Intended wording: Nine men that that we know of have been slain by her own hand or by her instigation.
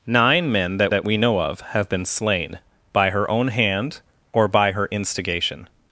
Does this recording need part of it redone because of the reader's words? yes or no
no